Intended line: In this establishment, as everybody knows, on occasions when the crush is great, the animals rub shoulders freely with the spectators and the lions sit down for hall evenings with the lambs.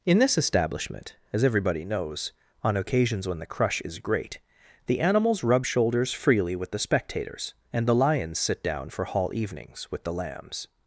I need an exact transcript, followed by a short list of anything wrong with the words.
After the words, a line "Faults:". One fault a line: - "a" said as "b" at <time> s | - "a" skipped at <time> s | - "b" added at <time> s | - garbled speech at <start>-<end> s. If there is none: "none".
In this establishment, as everybody knows, on occasions when the crush is great, the animals rub shoulders freely with the spectators and the lions sit down for hall evenings with the lambs.
Faults:
none